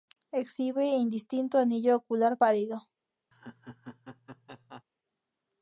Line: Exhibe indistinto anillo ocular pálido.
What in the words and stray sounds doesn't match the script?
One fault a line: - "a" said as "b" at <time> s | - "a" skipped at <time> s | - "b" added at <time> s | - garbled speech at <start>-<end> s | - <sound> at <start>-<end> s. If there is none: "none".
- laugh at 3.3-4.8 s